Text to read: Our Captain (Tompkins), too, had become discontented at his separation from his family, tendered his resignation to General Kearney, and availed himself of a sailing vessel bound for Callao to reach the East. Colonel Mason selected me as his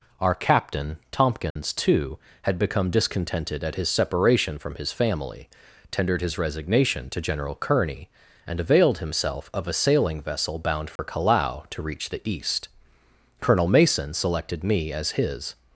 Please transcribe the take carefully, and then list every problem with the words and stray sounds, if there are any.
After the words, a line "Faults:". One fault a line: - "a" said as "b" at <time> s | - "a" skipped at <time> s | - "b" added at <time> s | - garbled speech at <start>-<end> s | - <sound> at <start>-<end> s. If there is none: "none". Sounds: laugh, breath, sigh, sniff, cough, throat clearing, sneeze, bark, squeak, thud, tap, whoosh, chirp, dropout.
Our Captain (Tompkins), too, had become discontented at his separation from his family, tendered his resignation to General Kearney, and availed himself of a sailing vessel bound for Callao to reach the East. Colonel Mason selected me as his
Faults:
- dropout at 1.5-1.6 s
- dropout at 11.0-11.0 s